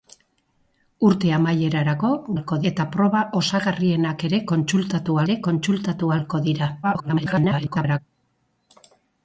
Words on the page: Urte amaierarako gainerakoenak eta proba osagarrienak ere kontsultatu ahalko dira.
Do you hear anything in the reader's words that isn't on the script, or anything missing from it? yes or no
yes